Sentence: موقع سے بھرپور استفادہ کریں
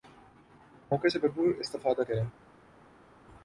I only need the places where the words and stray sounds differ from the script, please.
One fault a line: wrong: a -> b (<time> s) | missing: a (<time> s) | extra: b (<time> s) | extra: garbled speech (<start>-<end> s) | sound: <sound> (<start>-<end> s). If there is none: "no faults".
no faults